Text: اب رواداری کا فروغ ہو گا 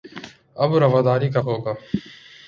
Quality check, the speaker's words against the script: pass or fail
fail